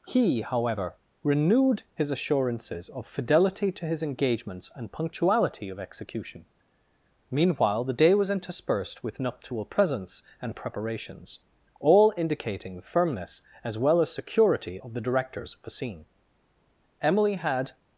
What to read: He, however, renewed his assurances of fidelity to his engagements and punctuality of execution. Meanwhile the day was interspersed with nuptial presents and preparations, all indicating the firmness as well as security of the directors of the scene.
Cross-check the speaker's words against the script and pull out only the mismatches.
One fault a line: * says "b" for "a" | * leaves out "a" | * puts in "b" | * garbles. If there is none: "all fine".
* puts in "Emily had"